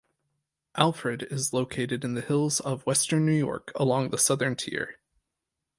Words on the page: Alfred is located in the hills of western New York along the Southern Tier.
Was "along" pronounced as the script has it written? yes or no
yes